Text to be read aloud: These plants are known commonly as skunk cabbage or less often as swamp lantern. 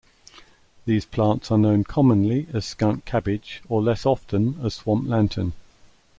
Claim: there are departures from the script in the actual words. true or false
false